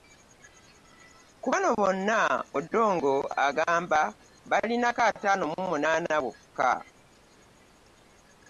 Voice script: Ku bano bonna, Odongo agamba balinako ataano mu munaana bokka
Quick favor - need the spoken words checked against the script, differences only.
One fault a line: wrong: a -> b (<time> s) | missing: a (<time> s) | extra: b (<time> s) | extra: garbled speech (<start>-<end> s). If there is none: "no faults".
no faults